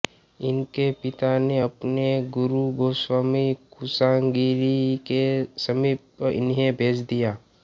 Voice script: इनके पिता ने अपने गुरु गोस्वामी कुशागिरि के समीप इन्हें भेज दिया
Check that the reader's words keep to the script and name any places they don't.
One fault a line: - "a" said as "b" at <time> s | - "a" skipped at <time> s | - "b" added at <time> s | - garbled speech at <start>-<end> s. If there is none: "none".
none